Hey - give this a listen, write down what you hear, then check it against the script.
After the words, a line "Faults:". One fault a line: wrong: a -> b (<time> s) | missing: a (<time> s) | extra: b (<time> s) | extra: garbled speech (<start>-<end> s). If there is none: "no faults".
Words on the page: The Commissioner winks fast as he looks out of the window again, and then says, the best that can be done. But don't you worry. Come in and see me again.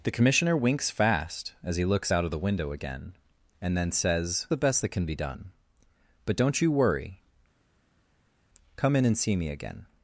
The Commissioner winks fast as he looks out of the window again, and then says, the best that can be done. But don't you worry. Come in and see me again.
Faults:
no faults